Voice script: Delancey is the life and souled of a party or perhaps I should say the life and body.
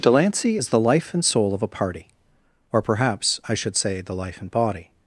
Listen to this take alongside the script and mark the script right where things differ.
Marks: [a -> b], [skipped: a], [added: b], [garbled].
Delancey is the life and [souled -> soul] of a party or perhaps I should say the life and body.